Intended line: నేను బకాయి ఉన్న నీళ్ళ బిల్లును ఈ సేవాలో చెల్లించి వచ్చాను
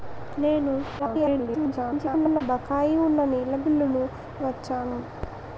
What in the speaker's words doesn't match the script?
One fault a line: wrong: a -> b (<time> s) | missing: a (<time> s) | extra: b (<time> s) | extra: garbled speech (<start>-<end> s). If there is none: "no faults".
extra: garbled speech (1.0-2.4 s)
missing: ఈ సేవాలో చెల్లించి (4.0 s)